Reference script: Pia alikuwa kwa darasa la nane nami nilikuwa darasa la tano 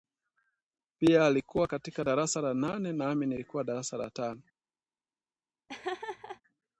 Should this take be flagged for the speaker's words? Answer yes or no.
yes